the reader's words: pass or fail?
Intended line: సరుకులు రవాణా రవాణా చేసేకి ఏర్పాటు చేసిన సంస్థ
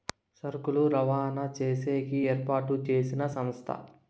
fail